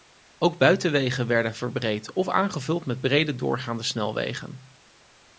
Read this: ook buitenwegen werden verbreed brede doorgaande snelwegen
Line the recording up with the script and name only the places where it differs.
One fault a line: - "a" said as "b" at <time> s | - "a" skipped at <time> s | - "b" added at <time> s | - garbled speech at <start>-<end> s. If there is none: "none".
- "of aangevuld met" added at 2.1 s